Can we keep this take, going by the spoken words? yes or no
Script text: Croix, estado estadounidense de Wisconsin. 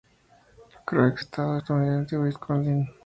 yes